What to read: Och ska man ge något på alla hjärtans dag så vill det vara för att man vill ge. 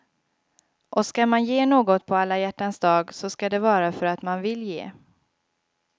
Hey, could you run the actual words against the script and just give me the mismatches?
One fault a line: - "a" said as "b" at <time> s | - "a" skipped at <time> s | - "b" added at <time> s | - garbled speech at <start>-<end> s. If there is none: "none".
- "vill" said as "ska" at 3.3 s